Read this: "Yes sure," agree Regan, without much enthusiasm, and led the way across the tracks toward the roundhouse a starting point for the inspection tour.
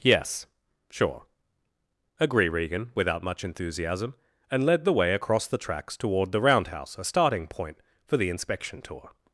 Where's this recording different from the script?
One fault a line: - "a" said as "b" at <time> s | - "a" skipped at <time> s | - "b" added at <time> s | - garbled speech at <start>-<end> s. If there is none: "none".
none